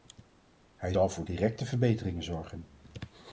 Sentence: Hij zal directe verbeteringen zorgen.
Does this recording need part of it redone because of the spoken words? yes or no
yes